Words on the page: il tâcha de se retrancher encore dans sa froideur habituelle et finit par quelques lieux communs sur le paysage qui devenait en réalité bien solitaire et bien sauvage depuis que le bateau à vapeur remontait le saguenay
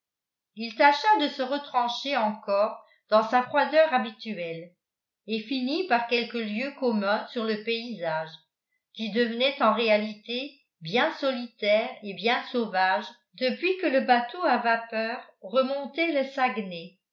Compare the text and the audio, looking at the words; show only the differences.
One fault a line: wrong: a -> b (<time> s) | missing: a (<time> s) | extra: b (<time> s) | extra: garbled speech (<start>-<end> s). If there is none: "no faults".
no faults